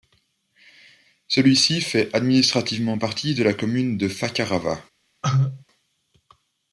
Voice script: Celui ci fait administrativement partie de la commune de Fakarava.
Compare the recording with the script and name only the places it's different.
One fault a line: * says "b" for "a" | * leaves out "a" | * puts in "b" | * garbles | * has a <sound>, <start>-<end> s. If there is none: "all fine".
* has a cough, 5.2-5.6 s